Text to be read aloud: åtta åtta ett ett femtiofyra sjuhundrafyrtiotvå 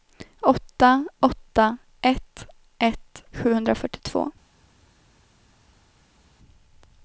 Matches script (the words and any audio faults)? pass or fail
fail